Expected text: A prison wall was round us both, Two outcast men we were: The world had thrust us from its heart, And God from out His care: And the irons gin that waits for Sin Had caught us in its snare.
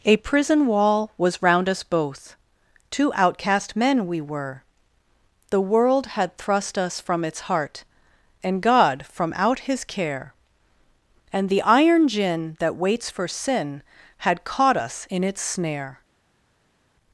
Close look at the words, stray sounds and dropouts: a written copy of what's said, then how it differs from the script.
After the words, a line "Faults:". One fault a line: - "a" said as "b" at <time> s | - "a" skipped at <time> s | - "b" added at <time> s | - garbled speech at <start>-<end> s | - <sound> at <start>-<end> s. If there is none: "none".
A prison wall was round us both, Two outcast men we were: The world had thrust us from its heart, And God from out His care: And the iron gin that waits for Sin Had caught us in its snare.
Faults:
- "irons" said as "iron" at 11.6 s